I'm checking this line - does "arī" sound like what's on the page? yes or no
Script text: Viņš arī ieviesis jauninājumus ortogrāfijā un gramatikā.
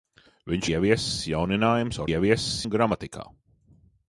no